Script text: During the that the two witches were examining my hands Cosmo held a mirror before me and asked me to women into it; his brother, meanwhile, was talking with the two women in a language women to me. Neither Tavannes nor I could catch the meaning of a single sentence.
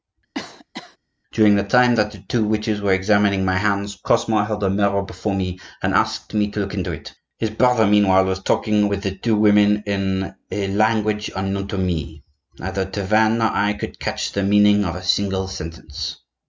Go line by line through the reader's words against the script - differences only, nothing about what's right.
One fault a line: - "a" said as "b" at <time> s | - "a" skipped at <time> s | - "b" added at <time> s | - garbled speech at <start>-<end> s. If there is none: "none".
- "time" added at 1.6 s
- "women" said as "look" at 6.6 s
- "women" said as "unknown" at 11.4 s